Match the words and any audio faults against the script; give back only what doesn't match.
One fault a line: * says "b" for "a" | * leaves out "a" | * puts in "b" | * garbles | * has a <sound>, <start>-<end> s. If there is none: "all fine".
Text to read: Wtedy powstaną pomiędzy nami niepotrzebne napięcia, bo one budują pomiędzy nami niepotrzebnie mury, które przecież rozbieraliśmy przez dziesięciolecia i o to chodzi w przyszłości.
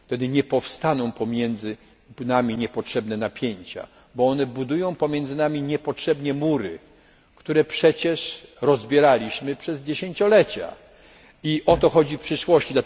* puts in "nie"